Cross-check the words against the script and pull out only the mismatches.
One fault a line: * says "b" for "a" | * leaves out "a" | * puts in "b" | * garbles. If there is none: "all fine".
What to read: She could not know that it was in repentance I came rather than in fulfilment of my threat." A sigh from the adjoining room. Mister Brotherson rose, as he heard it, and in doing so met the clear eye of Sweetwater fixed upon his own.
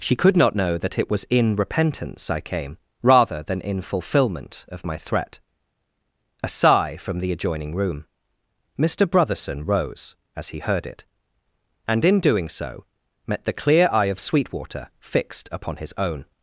all fine